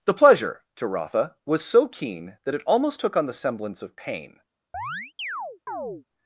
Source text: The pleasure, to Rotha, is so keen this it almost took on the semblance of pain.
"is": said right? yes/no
no